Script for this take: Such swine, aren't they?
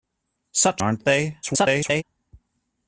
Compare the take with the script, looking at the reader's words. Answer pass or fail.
fail